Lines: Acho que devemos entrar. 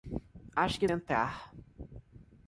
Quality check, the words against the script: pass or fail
fail